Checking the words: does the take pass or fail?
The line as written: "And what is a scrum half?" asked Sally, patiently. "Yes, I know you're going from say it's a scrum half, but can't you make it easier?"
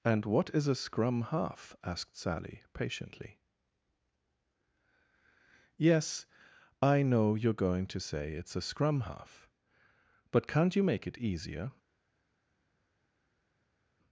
fail